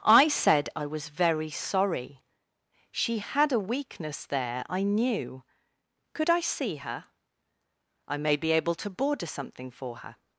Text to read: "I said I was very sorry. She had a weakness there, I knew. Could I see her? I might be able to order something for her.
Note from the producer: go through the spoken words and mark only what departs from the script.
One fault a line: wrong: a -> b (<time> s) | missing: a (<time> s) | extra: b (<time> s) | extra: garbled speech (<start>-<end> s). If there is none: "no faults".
wrong: might -> may (8.2 s)
wrong: order -> border (8.9 s)